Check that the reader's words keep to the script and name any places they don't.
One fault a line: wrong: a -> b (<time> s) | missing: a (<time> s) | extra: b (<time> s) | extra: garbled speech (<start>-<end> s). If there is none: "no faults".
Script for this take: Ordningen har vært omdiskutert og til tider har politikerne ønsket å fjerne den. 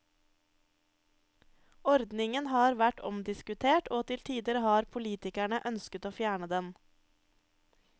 no faults